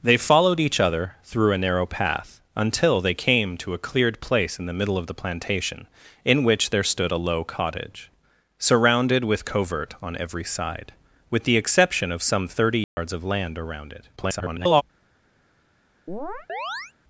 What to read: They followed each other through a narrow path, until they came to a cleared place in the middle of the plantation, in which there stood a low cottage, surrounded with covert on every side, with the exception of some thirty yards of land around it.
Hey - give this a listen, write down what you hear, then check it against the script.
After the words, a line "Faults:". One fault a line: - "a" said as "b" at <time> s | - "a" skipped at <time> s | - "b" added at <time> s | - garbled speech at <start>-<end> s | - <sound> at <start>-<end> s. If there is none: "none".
They followed each other through a narrow path, until they came to a cleared place in the middle of the plantation, in which there stood a low cottage, surrounded with covert on every side, with the exception of some thirty yards of land around it. [garbled]
Faults:
- dropout at 12.8-13.0 s
- garbled speech at 14.2-14.8 s
- chirp at 16.1-16.9 s